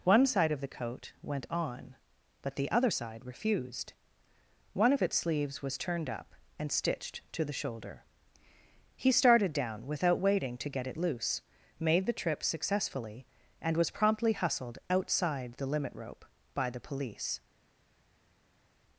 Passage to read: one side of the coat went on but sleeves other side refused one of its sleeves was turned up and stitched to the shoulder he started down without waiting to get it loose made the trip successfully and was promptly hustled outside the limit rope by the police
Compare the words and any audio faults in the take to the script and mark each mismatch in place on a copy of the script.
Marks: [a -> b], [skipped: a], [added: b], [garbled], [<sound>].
one side of the coat went on but [sleeves -> the] other side refused one of its sleeves was turned up and stitched to the shoulder he started down without waiting to get it loose made the trip successfully and was promptly hustled outside the limit rope by the police